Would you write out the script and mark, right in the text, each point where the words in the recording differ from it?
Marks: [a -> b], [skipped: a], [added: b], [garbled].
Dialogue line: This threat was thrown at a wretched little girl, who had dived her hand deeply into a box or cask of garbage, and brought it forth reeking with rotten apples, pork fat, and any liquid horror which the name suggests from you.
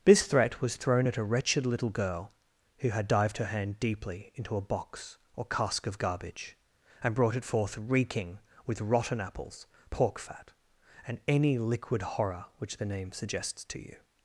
This threat was thrown at a wretched little girl, who had dived her hand deeply into a box or cask of garbage, and brought it forth reeking with rotten apples, pork fat, and any liquid horror which the name suggests [from -> to] you.